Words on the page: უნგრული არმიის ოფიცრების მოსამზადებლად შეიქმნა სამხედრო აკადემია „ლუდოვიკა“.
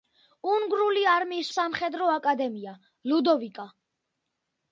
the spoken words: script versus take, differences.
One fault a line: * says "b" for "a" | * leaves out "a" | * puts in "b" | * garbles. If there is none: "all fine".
* leaves out "ოფიცრების მოსამზადებლად შეიქმნა"